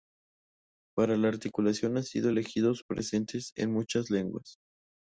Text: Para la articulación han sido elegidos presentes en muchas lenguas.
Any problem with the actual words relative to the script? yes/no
no